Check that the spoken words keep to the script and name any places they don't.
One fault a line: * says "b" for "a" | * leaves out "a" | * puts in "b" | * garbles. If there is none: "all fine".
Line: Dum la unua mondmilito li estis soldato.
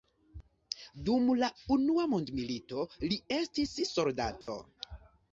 all fine